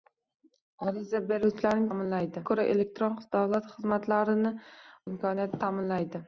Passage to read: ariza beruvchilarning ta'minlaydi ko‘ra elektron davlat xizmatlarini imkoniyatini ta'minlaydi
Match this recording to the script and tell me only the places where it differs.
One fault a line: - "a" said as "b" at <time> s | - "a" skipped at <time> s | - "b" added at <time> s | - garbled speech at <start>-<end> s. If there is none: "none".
none